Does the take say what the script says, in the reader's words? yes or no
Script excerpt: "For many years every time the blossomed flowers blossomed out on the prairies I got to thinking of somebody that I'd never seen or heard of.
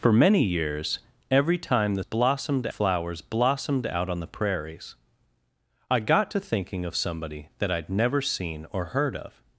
yes